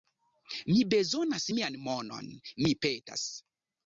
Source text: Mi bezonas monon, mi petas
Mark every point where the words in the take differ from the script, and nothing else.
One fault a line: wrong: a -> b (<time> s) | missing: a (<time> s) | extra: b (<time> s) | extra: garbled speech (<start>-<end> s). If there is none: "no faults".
extra: mian (1.5 s)